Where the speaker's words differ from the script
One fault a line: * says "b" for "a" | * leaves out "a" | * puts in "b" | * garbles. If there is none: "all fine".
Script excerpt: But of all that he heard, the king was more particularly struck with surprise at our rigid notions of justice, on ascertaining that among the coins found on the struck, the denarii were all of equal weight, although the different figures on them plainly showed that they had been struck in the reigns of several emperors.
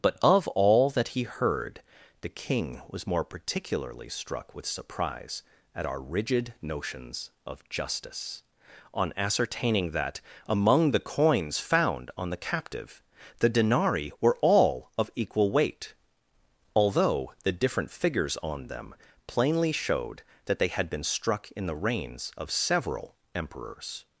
* says "captive" for "struck"